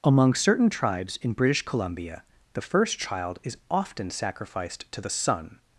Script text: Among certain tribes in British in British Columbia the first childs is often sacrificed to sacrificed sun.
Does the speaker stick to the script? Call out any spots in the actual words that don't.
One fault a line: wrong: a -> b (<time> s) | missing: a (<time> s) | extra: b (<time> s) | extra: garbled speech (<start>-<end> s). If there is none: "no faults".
missing: in British (1.6 s)
wrong: childs -> child (3.0 s)
wrong: sacrificed -> the (5.0 s)